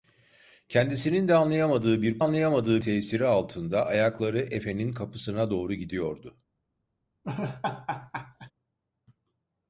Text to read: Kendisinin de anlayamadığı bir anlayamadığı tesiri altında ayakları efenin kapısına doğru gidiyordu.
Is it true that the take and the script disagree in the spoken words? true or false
false